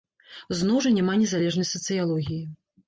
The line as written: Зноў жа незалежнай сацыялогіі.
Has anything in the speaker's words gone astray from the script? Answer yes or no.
yes